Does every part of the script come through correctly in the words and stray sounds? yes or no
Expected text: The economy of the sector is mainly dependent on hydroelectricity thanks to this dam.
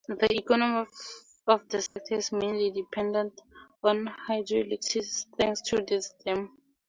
no